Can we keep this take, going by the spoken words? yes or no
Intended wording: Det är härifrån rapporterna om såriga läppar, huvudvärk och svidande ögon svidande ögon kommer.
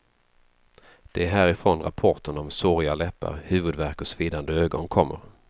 no